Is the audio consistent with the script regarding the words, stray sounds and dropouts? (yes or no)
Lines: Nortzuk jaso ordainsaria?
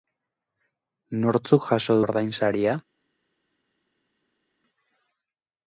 yes